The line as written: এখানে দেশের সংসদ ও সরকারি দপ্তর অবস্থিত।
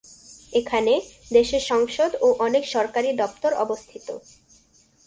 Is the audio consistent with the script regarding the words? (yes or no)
no